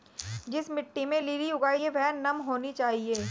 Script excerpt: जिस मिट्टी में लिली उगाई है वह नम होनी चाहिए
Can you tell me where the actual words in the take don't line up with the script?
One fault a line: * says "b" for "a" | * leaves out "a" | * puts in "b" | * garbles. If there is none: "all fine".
all fine